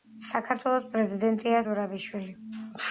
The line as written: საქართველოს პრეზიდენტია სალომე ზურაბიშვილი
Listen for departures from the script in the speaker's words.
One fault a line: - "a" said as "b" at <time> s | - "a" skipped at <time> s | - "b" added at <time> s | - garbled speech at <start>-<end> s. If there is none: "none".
- "სალომე" skipped at 1.6 s